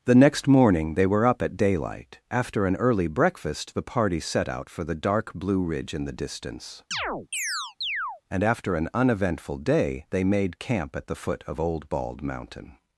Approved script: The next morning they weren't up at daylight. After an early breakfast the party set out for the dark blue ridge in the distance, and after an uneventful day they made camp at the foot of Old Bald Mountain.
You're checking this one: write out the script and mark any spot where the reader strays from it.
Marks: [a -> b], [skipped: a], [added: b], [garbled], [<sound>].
The next morning they [weren't -> were] up at daylight. After an early breakfast the party set out for the dark blue ridge in the distance, [chirp] and after an uneventful day they made camp at the foot of Old Bald Mountain.